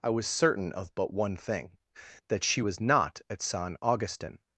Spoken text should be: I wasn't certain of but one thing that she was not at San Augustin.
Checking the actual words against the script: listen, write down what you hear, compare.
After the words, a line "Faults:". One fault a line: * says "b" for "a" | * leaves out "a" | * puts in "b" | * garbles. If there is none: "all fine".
I was certain of but one thing that she was not at San Augustin.
Faults:
* says "was" for "wasn't"